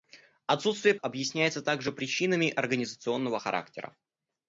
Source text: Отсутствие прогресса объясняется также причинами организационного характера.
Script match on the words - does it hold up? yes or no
no